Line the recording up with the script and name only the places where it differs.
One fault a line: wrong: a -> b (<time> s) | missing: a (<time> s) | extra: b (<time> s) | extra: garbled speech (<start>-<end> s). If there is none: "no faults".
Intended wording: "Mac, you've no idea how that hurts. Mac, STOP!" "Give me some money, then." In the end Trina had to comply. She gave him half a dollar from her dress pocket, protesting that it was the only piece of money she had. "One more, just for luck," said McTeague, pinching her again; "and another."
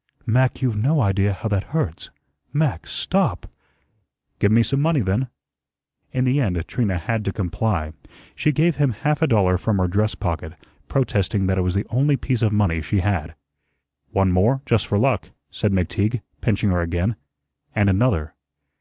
no faults